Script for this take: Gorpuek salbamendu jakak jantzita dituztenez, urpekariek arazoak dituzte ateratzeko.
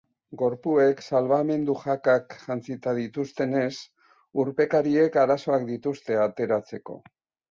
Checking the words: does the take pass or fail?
pass